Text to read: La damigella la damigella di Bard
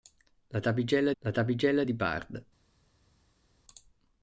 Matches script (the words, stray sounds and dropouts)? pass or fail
pass